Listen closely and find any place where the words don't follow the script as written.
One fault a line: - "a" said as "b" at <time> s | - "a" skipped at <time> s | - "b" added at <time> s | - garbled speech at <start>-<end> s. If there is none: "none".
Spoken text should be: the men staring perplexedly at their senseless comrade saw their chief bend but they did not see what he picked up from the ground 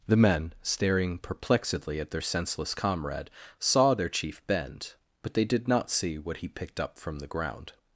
none